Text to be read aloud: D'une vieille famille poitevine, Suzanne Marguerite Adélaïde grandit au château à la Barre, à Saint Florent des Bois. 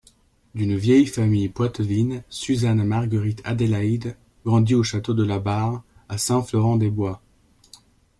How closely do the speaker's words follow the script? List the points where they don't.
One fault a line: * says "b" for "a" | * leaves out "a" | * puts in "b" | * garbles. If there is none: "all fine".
* says "de" for "à"